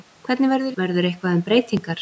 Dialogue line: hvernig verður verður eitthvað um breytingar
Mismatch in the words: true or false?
false